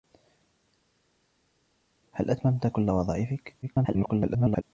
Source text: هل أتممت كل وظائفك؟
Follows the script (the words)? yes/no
no